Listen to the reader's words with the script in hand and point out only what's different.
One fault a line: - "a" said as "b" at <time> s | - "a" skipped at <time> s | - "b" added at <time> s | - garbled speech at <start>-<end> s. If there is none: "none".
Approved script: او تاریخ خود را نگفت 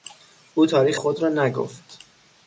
none